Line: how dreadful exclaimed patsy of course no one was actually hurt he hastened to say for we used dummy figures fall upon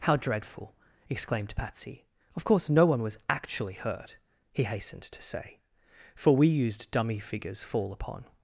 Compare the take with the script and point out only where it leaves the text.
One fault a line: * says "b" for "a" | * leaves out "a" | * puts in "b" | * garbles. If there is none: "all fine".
all fine